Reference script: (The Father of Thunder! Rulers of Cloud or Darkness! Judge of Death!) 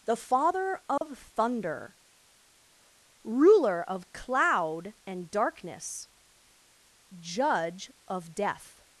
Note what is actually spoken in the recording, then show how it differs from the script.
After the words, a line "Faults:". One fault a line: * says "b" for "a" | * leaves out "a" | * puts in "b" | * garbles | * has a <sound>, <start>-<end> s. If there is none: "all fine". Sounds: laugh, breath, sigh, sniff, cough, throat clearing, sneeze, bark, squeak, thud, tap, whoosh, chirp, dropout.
(The Father of Thunder! Ruler of Cloud and Darkness! Judge of Death!)
Faults:
* has a dropout, 1.0-1.0 s
* says "Ruler" for "Rulers"
* says "and" for "or"